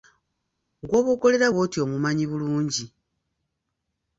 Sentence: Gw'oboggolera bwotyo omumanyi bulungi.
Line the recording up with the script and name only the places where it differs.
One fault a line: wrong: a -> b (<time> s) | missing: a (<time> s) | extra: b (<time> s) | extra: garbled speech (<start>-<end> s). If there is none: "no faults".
no faults